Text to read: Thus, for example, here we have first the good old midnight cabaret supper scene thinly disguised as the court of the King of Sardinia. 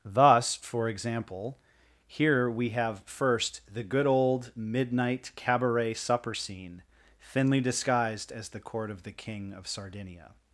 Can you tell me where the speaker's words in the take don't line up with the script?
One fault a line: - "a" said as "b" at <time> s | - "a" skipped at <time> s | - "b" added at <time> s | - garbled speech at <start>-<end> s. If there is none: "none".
none